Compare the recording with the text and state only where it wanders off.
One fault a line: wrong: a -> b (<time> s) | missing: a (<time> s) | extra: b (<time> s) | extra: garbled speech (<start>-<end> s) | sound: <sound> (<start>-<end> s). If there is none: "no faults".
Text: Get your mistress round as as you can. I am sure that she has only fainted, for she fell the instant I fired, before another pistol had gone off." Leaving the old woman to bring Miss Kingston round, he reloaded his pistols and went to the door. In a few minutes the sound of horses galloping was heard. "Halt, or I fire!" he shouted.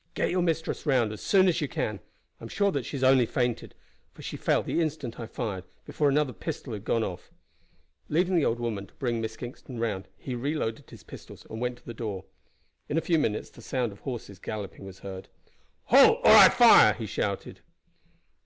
extra: soon (1.2 s)